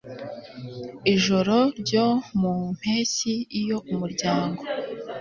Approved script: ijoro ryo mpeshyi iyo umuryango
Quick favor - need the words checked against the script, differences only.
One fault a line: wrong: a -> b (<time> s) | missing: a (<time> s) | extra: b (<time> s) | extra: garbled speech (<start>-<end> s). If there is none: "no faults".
extra: mu (2.4 s)